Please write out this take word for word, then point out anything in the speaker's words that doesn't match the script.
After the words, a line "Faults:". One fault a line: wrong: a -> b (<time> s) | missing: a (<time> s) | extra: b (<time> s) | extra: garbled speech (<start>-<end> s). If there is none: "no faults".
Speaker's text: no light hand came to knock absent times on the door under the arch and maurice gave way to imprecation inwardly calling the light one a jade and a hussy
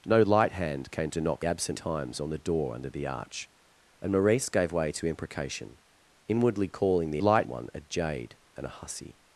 no light hand came to knock absent times on the door under the arch and maurice gave way to imprecation inwardly calling the light one a jade and a hussy
Faults:
no faults